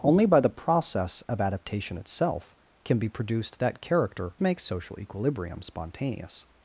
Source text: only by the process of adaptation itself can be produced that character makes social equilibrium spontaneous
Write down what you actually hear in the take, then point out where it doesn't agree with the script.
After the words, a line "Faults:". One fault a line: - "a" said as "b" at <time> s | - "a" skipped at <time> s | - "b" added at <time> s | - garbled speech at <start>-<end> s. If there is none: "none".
only by the process of adaptation itself can be produced that character makes social equilibrium spontaneous
Faults:
none